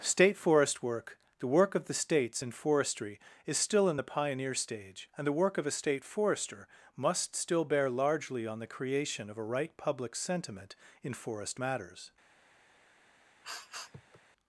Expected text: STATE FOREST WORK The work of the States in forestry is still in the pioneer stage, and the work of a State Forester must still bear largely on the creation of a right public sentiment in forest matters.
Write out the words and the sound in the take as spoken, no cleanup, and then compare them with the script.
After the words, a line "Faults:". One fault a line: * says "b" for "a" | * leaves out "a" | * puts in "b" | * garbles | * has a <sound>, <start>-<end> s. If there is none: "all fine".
STATE FOREST WORK The work of the States in forestry is still in the pioneer stage, and the work of a State Forester must still bear largely on the creation of a right public sentiment in forest matters.
Faults:
* has a sniff, 13.4-14.2 s